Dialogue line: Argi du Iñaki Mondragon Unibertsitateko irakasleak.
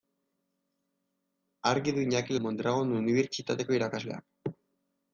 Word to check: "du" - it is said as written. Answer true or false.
true